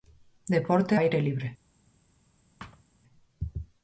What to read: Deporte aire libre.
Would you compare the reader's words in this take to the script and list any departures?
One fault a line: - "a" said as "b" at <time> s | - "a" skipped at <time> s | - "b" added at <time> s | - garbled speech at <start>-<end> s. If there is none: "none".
none